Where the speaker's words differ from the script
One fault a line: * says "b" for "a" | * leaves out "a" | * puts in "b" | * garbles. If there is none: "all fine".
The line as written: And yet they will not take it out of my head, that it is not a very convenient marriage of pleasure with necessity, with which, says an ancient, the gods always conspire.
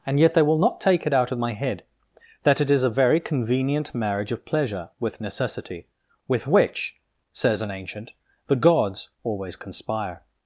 * leaves out "not"